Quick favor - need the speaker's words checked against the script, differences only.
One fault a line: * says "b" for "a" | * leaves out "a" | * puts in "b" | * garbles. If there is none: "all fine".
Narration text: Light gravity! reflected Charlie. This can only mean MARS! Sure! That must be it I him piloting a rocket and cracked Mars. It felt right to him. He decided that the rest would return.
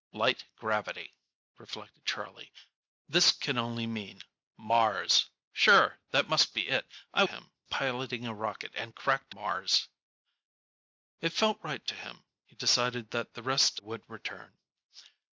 all fine